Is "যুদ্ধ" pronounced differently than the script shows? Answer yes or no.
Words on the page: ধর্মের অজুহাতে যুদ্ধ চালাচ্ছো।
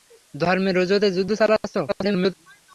no